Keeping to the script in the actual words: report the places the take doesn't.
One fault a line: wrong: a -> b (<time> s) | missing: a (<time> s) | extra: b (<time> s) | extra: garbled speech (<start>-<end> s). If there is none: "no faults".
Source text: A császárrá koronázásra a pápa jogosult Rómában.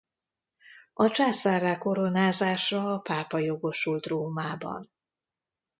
no faults